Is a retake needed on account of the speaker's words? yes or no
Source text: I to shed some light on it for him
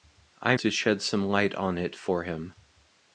no